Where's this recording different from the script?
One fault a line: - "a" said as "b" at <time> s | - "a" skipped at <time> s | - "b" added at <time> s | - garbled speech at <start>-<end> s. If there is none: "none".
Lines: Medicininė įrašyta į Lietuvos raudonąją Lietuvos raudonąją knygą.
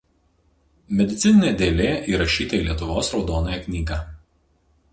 - "dėlė" added at 1.6 s
- "Lietuvos raudonąją" skipped at 3.6 s